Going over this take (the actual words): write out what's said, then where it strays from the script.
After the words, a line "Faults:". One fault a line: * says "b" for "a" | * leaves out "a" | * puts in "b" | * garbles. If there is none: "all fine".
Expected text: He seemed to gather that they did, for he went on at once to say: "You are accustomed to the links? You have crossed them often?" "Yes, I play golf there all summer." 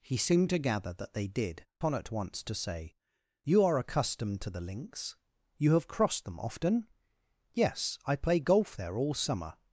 He seemed to gather that they did, on at once to say: "You are accustomed to the links? You have crossed them often?" "Yes, I play golf there all summer."
Faults:
* leaves out "for he went"